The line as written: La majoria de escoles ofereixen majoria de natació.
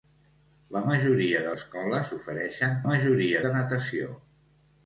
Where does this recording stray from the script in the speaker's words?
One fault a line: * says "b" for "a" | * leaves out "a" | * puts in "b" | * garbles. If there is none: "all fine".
all fine